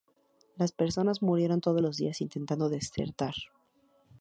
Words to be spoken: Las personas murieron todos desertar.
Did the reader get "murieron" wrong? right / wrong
right